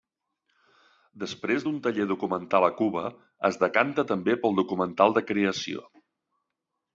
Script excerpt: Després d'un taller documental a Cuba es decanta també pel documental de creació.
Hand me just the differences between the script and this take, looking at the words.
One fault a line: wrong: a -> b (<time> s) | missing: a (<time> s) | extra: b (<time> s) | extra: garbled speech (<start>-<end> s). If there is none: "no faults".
no faults